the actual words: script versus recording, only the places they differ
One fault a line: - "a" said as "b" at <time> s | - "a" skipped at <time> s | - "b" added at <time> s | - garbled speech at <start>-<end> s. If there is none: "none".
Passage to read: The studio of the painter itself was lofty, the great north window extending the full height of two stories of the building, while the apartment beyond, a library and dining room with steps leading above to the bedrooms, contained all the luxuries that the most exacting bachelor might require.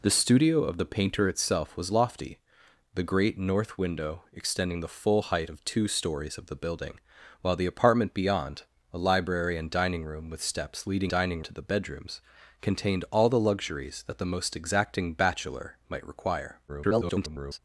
- "above" said as "dining" at 11.1 s
- garbled speech at 16.7-17.6 s